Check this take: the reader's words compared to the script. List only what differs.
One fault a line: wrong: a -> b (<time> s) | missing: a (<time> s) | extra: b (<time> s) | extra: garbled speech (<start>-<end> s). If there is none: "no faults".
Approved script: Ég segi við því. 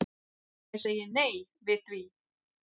extra: nei (1.2 s)